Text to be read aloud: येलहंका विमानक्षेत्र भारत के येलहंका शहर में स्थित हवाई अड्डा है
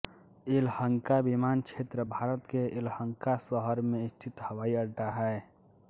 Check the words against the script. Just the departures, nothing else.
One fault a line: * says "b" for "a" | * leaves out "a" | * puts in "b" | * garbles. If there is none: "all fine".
all fine